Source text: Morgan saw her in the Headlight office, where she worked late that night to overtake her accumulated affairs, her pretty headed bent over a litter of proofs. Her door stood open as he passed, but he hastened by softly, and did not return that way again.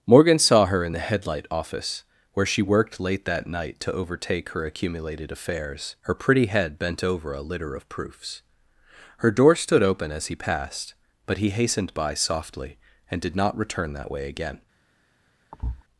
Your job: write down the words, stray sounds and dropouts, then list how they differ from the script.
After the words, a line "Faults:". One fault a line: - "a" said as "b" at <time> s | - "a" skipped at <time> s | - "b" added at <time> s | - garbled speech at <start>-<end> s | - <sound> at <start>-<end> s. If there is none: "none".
Morgan saw her in the Headlight office, where she worked late that night to overtake her accumulated affairs, her pretty head bent over a litter of proofs. Her door stood open as he passed, but he hastened by softly, and did not return that way again.
Faults:
- "headed" said as "head" at 6.5 s
- thud at 15.5-15.8 s